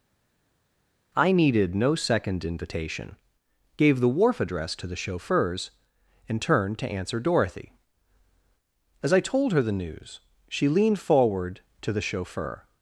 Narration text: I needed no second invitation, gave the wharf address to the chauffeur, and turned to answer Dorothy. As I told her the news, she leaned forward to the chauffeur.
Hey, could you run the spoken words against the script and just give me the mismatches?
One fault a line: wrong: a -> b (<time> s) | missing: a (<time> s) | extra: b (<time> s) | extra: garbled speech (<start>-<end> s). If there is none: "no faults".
wrong: chauffeur -> chauffeurs (4.9 s)